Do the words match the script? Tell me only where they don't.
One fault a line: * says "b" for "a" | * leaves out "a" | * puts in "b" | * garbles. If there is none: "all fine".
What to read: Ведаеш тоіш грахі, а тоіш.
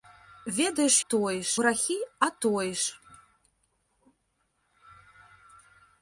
all fine